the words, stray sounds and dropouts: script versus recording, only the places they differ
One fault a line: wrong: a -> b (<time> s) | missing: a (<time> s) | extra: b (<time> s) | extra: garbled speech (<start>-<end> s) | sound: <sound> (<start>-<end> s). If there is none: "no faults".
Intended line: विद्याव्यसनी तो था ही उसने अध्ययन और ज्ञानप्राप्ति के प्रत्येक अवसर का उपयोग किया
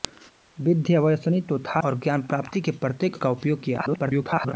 missing: ही उसने अध्ययन (1.8 s)
missing: अवसर (3.2 s)
extra: garbled speech (3.8-4.5 s)